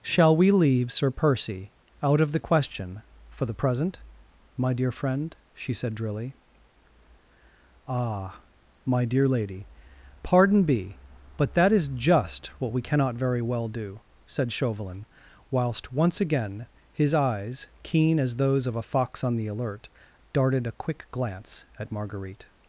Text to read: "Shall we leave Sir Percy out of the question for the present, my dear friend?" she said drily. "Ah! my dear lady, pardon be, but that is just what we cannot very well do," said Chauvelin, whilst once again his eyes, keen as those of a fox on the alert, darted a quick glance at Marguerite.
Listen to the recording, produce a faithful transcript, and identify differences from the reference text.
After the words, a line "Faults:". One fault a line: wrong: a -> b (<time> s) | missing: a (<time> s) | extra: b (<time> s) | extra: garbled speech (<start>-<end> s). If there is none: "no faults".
"Shall we leave Sir Percy out of the question for the present, my dear friend?" she said drily. "Ah! my dear lady, pardon be, but that is just what we cannot very well do," said Chauvelin, whilst once again his eyes, keen as those of a fox on the alert, darted a quick glance at Marguerite.
Faults:
no faults